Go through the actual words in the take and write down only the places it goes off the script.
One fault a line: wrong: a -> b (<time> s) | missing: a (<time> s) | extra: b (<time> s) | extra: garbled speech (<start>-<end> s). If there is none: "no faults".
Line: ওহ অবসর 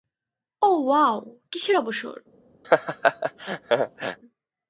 extra: ওয়াও কিসের (0.8 s)